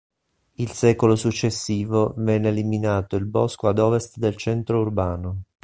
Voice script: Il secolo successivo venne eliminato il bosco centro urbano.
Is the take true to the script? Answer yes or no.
no